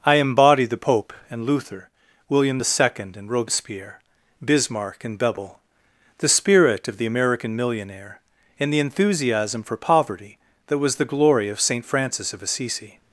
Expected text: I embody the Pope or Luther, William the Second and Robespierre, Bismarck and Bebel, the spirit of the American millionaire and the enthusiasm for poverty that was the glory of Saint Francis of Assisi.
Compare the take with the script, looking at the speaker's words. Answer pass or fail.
fail